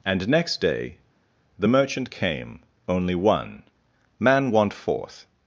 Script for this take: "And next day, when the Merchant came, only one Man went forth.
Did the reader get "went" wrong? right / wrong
wrong